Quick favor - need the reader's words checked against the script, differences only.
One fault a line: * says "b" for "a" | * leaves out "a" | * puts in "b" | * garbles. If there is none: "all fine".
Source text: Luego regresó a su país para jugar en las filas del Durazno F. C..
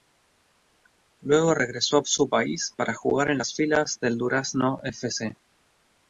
all fine